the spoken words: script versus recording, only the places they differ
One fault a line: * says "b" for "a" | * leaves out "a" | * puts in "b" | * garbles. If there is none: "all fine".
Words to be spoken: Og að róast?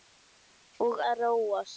all fine